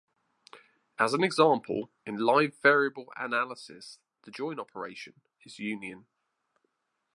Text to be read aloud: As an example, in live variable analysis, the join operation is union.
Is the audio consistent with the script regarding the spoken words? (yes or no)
yes